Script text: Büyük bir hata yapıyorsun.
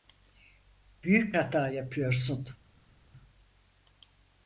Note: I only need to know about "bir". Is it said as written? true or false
false